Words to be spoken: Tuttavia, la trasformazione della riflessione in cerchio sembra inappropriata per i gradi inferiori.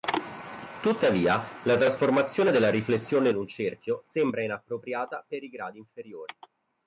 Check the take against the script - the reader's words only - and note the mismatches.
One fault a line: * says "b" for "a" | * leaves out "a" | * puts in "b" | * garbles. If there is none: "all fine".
* puts in "un"